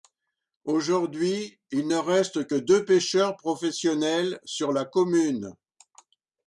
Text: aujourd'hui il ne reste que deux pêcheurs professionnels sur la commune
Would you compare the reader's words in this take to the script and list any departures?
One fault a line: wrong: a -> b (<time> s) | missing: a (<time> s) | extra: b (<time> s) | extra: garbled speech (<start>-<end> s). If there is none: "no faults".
no faults